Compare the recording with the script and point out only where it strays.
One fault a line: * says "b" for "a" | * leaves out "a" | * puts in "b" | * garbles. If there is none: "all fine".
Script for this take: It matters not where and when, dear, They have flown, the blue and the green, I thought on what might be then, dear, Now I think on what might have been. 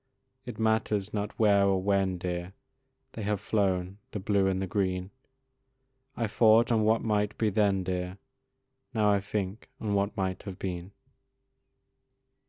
* says "or" for "and"